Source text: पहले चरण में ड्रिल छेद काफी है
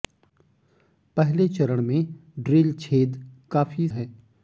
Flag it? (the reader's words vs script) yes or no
no